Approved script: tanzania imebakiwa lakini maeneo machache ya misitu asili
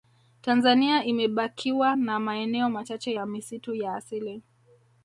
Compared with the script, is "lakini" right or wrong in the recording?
wrong